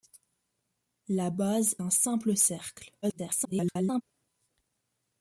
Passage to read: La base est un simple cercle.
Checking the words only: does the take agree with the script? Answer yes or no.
no